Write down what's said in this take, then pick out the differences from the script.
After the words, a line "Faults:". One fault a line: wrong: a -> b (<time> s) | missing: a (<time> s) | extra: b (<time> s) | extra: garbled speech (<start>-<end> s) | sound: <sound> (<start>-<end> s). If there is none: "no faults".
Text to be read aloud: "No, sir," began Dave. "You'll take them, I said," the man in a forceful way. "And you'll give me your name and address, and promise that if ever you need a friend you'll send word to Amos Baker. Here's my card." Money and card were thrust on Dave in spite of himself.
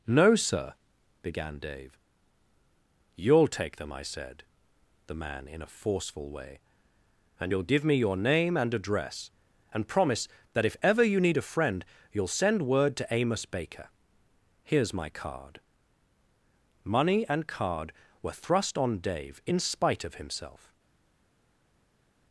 "No, sir," began Dave. "You'll take them, I said," the man in a forceful way. "And you'll give me your name and address, and promise that if ever you need a friend you'll send word to Amos Baker. Here's my card." Money and card were thrust on Dave in spite of himself.
Faults:
no faults